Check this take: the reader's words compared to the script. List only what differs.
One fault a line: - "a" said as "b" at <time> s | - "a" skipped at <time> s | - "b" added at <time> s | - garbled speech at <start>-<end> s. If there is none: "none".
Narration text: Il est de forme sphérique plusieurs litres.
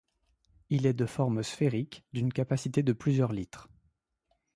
- "d'une capacité de" added at 2.1 s